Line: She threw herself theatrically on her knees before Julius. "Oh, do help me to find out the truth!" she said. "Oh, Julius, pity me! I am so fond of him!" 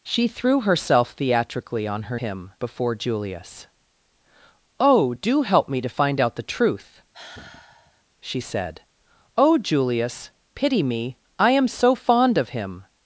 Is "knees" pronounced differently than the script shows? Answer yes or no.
yes